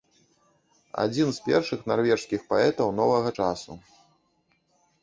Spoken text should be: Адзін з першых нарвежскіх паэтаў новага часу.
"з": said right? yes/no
yes